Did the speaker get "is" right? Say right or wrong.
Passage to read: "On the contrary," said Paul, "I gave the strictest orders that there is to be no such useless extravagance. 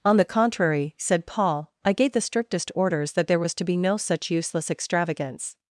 wrong